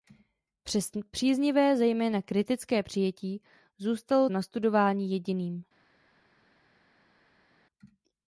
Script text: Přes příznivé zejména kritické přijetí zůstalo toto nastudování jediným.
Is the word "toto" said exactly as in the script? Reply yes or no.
no